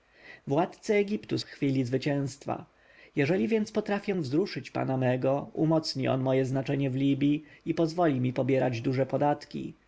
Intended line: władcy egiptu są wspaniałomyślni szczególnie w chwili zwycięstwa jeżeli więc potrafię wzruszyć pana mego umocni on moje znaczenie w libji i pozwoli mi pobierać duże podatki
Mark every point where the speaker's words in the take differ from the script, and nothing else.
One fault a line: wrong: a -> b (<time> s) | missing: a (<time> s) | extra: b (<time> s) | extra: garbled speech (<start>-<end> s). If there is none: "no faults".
missing: są wspaniałomyślni szczególnie (1.4 s)